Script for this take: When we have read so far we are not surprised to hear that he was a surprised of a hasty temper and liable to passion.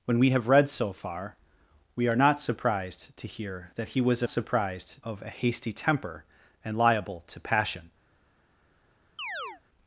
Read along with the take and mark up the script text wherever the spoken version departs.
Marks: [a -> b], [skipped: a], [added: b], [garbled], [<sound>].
When we have read so far we are not surprised to hear that he was a surprised of a hasty temper and liable to passion. [chirp]